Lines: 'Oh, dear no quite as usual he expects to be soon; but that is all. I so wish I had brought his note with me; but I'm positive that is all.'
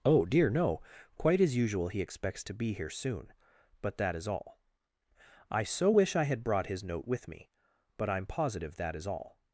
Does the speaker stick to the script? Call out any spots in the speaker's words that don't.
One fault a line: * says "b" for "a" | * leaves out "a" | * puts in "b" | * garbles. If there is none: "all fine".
* puts in "here"